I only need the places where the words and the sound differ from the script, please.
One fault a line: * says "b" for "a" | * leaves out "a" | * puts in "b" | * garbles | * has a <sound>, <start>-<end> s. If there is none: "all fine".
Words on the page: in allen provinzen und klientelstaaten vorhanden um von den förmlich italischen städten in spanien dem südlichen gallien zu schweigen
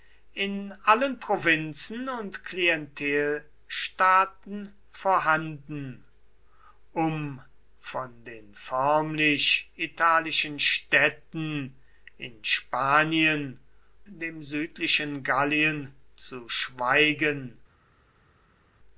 all fine